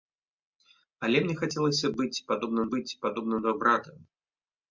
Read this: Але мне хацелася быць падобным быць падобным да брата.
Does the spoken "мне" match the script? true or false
true